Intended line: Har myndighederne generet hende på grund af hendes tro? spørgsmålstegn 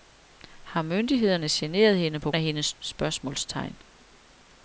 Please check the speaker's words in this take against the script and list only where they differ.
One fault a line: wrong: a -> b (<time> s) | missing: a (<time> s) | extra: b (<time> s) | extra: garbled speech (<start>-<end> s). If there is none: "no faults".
missing: grund (2.3 s)
missing: tro (2.7 s)